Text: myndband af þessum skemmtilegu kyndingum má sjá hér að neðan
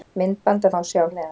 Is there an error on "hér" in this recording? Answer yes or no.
yes